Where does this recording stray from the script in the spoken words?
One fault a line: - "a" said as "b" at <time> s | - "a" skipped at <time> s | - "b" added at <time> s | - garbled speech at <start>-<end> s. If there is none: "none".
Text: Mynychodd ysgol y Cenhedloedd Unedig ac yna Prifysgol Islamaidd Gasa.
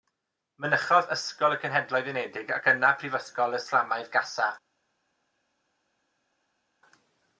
none